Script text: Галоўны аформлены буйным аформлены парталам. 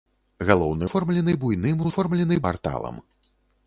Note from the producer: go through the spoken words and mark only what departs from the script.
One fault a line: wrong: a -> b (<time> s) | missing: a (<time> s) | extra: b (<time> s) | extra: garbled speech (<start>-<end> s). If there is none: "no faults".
no faults